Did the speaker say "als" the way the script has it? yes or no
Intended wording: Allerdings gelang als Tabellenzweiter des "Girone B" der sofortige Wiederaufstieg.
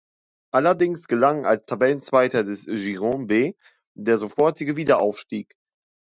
yes